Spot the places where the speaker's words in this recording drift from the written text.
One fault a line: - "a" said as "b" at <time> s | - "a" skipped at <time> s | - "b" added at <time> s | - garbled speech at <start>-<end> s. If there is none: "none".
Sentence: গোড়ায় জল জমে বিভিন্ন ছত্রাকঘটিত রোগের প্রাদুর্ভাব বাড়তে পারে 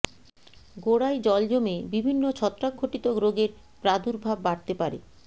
none